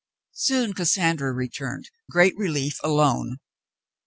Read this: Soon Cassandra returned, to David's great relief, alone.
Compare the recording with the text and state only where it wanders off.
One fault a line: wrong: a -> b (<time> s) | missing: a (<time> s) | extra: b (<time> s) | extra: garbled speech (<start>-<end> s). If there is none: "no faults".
missing: to David's (1.9 s)